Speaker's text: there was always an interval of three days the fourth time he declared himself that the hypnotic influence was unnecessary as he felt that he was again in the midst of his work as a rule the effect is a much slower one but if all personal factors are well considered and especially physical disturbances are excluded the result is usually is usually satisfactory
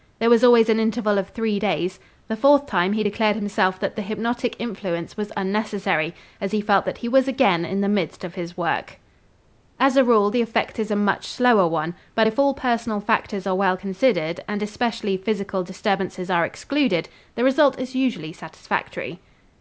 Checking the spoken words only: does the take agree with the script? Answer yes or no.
no